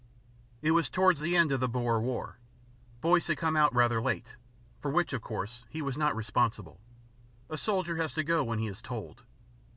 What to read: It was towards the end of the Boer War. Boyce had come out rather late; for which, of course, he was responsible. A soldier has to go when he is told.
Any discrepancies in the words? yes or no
yes